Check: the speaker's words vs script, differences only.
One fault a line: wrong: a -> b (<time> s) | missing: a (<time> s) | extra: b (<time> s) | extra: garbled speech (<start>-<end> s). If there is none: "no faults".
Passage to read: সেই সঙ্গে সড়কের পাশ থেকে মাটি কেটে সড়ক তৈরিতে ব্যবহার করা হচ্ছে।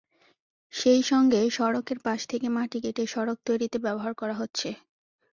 no faults